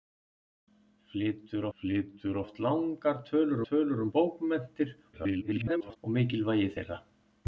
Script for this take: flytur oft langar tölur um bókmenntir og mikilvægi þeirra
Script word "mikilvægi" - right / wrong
right